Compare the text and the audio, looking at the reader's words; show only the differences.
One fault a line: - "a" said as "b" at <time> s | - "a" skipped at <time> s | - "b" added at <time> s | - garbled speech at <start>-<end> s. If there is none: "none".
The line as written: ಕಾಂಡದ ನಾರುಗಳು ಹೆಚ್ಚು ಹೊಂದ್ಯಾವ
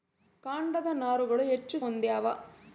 none